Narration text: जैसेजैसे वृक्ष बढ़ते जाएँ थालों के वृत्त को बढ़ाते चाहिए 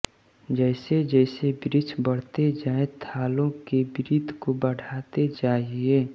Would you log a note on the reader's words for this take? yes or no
no